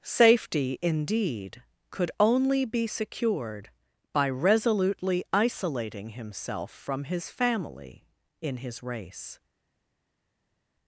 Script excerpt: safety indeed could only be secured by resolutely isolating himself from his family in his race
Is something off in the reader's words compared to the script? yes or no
no